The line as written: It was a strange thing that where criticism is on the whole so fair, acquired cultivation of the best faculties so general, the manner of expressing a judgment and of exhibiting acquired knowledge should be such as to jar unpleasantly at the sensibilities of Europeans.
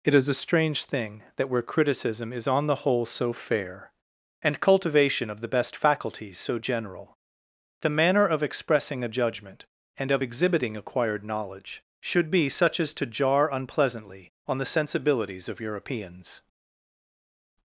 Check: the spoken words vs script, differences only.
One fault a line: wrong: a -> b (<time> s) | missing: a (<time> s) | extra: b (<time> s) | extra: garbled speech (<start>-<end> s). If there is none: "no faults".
wrong: was -> is (0.1 s)
wrong: acquired -> and (4.4 s)
wrong: at -> on (14.5 s)